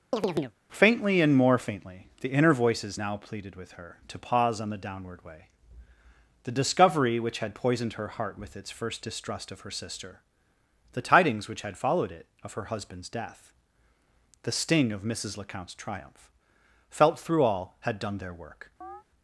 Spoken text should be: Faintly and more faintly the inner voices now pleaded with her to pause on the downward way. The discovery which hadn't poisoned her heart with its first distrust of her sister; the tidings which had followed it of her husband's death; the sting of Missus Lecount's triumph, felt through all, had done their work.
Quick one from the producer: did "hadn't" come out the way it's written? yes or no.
no